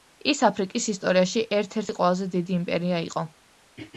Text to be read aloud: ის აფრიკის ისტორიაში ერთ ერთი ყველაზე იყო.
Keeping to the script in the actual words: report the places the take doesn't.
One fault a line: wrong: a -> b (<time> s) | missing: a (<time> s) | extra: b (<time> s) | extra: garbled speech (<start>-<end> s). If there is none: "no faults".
extra: დიდი იმპერია (2.4 s)